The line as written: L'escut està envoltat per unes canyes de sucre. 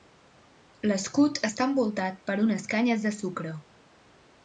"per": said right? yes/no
yes